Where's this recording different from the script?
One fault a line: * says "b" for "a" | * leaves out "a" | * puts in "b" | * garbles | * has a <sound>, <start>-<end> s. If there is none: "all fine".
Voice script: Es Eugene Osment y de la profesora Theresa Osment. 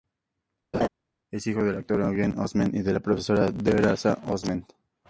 * has a laugh, 0.7-0.9 s
* puts in "hijo del actor"